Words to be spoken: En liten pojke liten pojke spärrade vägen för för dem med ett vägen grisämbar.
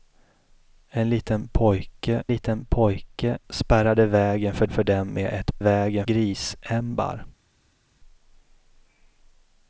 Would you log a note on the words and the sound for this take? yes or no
no